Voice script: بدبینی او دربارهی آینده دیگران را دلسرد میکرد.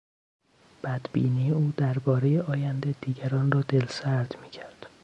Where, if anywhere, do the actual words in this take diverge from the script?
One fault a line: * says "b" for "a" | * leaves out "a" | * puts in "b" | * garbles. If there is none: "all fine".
all fine